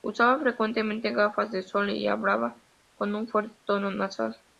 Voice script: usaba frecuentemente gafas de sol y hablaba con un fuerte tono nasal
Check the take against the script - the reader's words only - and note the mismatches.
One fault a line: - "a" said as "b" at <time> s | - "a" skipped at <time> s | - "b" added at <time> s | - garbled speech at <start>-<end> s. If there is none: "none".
none